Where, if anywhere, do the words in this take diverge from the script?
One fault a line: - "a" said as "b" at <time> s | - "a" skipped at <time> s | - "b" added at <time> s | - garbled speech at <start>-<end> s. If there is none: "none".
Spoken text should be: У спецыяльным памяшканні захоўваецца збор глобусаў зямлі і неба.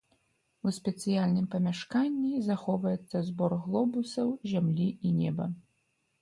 none